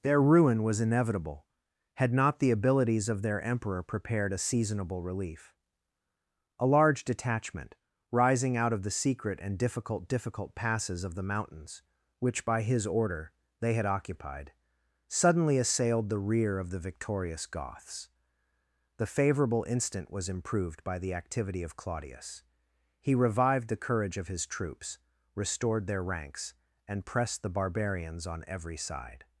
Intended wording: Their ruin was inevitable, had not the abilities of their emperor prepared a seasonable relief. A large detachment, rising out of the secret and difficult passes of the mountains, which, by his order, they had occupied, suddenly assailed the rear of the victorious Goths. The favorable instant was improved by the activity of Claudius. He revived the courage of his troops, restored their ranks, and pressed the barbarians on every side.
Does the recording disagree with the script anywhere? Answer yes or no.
yes